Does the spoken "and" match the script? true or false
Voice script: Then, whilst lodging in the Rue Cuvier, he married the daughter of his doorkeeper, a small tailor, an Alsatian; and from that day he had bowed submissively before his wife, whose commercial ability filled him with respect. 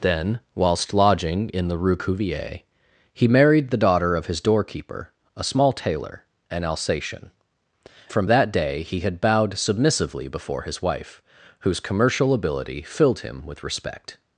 false